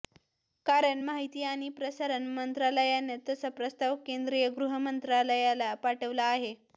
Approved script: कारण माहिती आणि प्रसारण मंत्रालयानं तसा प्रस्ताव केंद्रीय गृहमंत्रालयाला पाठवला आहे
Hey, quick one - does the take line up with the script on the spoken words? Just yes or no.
yes